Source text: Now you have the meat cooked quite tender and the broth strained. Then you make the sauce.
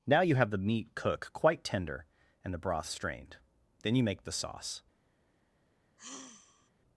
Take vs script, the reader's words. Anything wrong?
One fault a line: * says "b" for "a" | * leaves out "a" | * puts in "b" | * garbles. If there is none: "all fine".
* says "cook" for "cooked"